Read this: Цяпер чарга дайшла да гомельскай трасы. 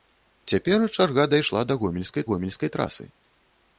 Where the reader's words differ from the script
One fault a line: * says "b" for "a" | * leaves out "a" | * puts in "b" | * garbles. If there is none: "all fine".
* puts in "гомельскай"